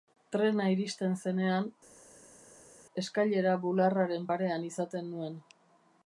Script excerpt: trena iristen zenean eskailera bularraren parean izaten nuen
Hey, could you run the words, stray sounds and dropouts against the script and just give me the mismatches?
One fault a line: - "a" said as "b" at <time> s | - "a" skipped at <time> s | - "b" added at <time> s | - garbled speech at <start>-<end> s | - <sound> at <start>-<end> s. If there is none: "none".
none